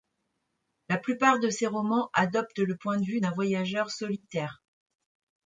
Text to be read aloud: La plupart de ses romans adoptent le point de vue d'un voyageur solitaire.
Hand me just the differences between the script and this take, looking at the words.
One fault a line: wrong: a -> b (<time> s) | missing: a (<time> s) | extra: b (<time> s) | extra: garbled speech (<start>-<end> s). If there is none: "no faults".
no faults